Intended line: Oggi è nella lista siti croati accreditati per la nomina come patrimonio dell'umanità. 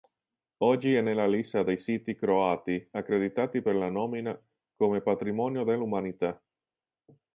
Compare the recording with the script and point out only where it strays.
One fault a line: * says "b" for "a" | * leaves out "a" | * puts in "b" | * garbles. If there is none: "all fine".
* puts in "dei"